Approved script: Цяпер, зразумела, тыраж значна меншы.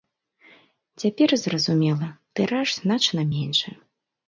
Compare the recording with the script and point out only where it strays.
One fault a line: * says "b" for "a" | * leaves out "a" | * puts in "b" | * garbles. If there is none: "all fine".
all fine